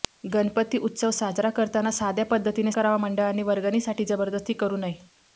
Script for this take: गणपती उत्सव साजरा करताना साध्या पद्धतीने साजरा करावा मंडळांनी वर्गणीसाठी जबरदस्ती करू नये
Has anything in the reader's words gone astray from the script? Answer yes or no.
yes